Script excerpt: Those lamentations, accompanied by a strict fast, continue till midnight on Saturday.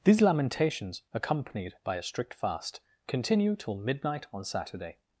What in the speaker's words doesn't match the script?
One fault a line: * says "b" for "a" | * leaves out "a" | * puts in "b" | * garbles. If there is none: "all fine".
* says "These" for "Those"